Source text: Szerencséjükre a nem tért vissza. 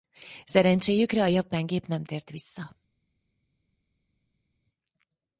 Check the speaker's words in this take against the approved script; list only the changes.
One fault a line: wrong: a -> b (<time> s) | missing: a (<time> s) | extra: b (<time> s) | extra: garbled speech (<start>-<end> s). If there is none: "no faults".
extra: japán gép (1.3 s)